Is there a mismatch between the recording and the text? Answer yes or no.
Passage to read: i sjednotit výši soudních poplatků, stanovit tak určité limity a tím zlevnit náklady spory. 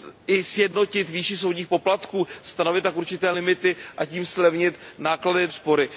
no